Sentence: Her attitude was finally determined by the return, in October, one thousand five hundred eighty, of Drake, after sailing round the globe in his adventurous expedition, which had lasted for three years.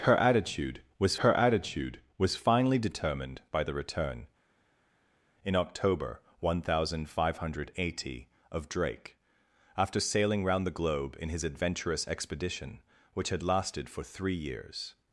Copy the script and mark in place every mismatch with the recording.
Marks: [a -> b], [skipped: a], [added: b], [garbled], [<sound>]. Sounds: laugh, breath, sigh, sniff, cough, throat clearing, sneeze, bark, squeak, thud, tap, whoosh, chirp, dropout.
Her attitude was [added: her attitude was] finally determined by the return, in October, one thousand five hundred eighty, of Drake, after sailing round the globe in his adventurous expedition, which had lasted for three years.